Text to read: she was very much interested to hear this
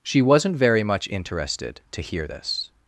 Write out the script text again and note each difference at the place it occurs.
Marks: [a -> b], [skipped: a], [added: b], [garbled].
she [was -> wasn't] very much interested to hear this